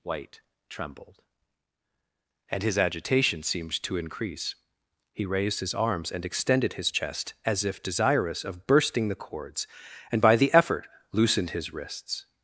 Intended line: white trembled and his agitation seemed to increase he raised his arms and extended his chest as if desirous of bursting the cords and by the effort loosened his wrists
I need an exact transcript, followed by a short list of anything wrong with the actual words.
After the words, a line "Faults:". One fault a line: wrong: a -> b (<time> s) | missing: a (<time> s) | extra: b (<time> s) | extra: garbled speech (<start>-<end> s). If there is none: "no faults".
white trembled and his agitation seemed to increase he raised his arms and extended his chest as if desirous of bursting the cords and by the effort loosened his wrists
Faults:
no faults